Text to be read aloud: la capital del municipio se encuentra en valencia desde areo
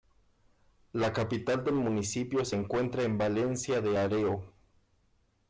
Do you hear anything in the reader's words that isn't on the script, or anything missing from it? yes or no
yes